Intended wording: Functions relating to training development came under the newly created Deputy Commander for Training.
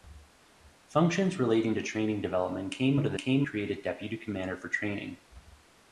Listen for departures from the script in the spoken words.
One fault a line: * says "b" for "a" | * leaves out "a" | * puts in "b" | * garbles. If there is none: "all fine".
* says "came" for "newly"